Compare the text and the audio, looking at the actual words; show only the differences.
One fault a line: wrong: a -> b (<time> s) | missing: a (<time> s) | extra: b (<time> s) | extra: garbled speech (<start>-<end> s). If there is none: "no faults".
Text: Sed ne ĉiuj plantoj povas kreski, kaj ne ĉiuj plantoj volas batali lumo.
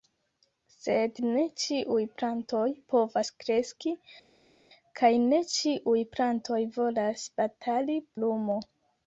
no faults